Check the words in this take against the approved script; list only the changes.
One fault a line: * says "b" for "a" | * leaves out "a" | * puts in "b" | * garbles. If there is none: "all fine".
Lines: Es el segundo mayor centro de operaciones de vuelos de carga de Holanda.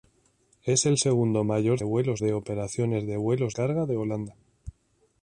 * says "vuelos" for "centro"
* leaves out "de"